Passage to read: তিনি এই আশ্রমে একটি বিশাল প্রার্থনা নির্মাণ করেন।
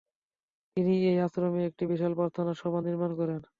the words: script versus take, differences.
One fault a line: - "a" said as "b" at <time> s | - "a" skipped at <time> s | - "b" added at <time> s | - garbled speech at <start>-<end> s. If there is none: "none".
- "সভা" added at 2.6 s